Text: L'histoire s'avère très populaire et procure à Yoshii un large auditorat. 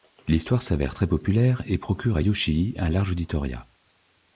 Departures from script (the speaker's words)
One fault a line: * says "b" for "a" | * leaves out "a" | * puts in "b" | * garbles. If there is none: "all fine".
all fine